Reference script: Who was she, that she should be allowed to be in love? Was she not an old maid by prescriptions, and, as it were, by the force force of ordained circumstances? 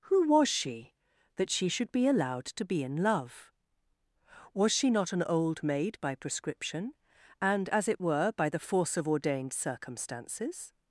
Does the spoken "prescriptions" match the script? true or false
false